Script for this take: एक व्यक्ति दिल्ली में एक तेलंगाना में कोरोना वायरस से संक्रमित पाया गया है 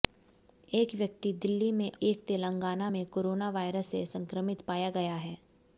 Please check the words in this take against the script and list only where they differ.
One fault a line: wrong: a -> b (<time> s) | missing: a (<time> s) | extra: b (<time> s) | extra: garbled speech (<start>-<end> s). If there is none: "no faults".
no faults